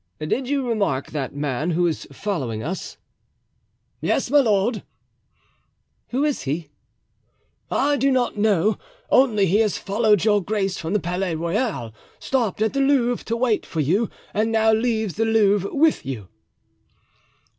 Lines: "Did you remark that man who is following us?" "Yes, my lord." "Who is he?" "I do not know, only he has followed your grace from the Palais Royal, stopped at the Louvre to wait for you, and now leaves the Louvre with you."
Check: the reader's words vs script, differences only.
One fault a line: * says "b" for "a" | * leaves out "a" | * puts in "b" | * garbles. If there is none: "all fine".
all fine